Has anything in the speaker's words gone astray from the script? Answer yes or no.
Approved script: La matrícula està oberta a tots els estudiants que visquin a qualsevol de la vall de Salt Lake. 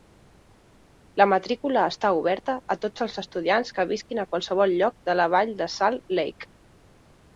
yes